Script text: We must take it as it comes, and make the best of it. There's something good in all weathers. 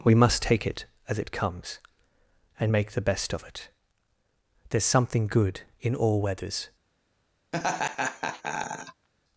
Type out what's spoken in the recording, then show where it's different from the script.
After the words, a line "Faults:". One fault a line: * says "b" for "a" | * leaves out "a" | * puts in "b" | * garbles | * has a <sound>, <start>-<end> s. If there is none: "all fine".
We must take it as it comes, and make the best of it. There's something good in all weathers.
Faults:
* has a laugh, 7.5-9.1 s